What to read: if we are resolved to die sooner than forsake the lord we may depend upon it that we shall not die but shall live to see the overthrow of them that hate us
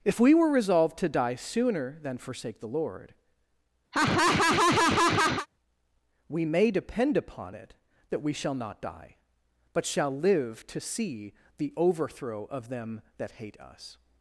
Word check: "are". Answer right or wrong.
wrong